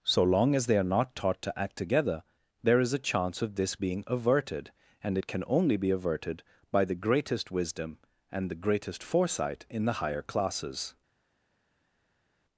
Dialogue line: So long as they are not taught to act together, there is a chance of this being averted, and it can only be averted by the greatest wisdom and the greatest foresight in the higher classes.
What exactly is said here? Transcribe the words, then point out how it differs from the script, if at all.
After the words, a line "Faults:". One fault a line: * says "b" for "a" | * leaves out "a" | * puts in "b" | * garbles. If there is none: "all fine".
So long as they are not taught to act together, there is a chance of this being averted, and it can only be averted by the greatest wisdom and the greatest foresight in the higher classes.
Faults:
all fine